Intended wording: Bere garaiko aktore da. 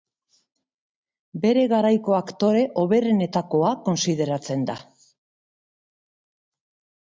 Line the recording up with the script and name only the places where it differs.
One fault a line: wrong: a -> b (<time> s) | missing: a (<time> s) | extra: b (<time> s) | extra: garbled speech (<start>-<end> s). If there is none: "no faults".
extra: hoberenetakoa kontsideratzen (2.8 s)